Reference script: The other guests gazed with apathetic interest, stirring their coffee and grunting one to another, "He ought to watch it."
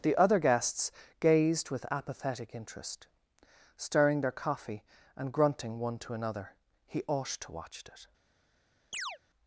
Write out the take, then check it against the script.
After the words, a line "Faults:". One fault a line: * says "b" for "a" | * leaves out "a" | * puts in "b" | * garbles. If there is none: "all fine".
The other guests gazed with apathetic interest, stirring their coffee and grunting one to another, "He ought to watch it."
Faults:
all fine